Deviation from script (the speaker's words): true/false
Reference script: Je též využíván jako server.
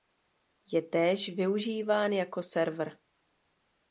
false